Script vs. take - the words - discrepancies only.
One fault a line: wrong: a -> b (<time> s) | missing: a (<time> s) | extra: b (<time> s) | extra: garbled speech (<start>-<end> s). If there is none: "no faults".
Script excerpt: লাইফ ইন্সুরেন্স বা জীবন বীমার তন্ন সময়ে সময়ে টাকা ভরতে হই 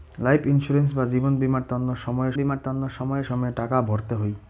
extra: বীমার তন্ন সময়ে (2.3 s)